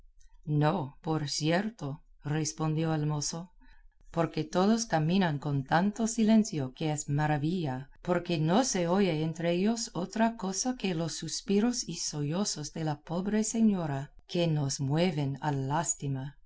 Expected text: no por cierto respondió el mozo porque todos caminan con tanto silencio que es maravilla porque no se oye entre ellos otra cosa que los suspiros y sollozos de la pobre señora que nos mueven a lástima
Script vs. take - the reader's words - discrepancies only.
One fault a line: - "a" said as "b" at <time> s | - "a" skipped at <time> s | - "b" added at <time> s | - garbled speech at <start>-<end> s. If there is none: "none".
none